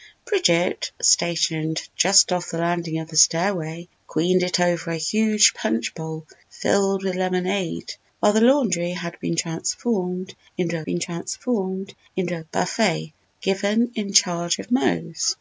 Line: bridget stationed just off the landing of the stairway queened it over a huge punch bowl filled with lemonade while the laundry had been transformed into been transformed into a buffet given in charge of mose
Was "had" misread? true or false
false